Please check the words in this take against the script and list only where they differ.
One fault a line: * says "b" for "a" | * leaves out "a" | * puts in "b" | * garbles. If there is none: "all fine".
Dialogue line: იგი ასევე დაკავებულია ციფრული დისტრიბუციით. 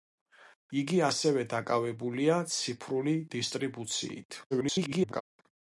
* garbles